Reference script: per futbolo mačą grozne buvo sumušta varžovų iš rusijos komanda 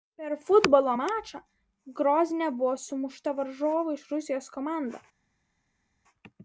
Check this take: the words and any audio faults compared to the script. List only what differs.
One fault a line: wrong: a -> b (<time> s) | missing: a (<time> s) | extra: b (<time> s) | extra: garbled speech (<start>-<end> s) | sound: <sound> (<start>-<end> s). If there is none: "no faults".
no faults